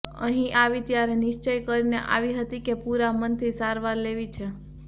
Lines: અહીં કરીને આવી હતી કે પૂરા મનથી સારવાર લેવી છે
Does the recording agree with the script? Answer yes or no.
no